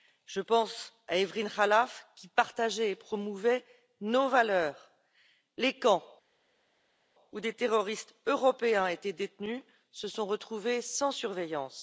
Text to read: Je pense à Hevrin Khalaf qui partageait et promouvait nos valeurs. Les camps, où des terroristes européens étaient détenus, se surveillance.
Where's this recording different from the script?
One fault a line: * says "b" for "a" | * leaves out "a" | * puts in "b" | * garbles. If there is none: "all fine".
* puts in "sont retrouvés sans"